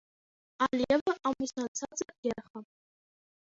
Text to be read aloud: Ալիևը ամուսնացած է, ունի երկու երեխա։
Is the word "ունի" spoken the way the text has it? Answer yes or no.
no